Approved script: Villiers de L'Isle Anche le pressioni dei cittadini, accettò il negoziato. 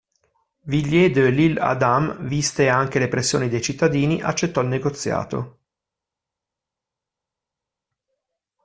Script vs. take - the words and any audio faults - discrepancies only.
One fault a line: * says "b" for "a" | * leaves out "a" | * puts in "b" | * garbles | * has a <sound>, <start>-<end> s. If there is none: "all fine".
* puts in "Adam viste"